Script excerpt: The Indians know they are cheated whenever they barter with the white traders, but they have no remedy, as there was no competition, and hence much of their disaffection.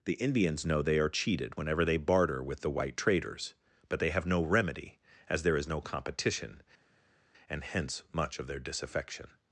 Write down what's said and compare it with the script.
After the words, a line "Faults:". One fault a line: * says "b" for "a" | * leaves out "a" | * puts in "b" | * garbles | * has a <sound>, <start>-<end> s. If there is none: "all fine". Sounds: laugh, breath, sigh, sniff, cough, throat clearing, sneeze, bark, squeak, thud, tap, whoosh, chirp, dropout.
The Indians know they are cheated whenever they barter with the white traders, but they have no remedy, as there is no competition, and hence much of their disaffection.
Faults:
* says "is" for "was"